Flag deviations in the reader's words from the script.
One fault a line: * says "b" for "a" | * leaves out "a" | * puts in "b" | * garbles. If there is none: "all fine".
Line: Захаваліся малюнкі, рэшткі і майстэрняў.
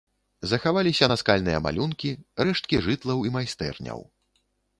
* puts in "наскальныя"
* puts in "жытлаў"